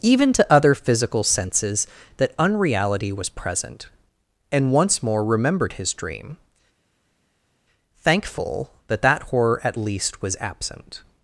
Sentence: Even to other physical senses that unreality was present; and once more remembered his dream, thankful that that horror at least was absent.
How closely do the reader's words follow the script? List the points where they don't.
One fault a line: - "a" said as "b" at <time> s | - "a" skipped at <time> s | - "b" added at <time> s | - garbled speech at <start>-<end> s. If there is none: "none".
none